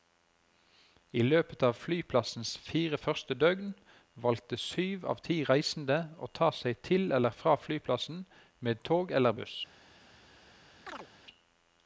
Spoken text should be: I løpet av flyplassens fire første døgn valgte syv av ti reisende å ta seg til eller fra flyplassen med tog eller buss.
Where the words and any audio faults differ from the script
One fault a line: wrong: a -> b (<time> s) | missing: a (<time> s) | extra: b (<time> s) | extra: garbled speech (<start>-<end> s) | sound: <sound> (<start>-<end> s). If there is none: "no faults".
sound: chirp (10.9-11.1 s)